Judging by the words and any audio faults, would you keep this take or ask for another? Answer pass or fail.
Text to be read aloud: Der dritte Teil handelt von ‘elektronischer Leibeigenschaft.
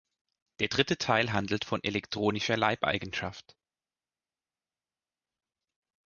pass